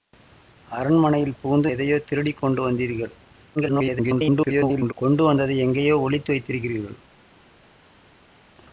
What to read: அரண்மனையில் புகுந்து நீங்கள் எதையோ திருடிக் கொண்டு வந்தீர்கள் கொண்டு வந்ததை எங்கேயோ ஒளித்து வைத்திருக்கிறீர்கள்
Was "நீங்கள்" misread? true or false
true